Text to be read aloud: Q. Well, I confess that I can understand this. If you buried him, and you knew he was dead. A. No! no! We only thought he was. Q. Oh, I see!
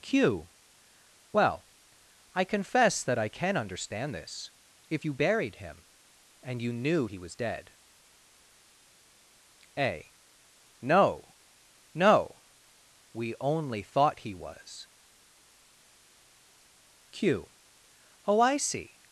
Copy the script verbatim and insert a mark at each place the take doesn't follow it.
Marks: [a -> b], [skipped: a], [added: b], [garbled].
Q. Well, I confess that I can understand this. If you buried him, and you knew he was dead. A. No! no! We only thought he was. Q. Oh, I see!